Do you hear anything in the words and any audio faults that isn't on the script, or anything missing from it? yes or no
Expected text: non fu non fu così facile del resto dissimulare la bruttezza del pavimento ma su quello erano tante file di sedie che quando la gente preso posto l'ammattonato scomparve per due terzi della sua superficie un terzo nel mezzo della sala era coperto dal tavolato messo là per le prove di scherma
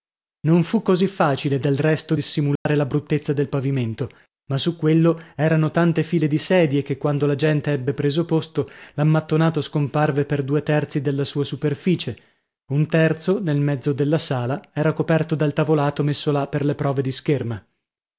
yes